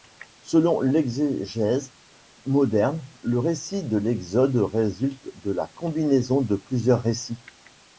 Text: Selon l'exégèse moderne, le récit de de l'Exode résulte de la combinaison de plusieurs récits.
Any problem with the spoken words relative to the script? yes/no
yes